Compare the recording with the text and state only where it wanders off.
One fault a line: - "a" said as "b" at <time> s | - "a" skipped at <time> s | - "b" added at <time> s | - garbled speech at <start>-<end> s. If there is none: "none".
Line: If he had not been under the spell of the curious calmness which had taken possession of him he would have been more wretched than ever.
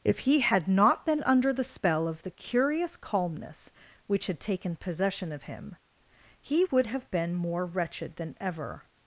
none